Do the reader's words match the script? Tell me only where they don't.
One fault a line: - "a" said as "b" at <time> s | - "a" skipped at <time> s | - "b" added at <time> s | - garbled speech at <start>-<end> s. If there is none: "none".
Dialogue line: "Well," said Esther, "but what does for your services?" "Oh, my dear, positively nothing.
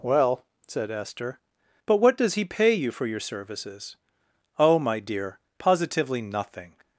- "he pay you" added at 2.4 s